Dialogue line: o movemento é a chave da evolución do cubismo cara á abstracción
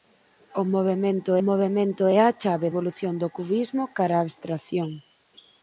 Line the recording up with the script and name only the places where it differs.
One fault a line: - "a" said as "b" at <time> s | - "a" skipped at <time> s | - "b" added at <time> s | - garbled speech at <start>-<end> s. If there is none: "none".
- "movemento" added at 1.5 s
- "da" skipped at 2.7 s